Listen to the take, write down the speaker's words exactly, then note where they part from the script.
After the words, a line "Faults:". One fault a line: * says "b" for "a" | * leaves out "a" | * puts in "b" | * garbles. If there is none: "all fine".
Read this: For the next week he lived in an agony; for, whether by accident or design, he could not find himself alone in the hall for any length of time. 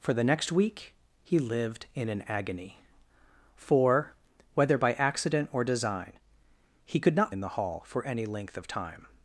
For the next week he lived in an agony; for, whether by accident or design, he could not in the hall for any length of time.
Faults:
* leaves out "find himself alone"